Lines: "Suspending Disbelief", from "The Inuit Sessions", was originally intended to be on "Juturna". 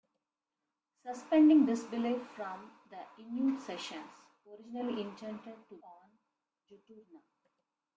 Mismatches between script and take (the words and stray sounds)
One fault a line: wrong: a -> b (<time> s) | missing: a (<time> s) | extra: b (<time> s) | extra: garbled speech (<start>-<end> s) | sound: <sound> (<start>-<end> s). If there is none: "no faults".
missing: was (4.3 s)
missing: be (5.8 s)